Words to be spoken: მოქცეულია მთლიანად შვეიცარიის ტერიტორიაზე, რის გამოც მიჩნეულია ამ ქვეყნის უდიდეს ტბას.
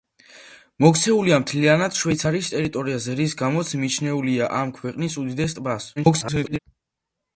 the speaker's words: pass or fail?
fail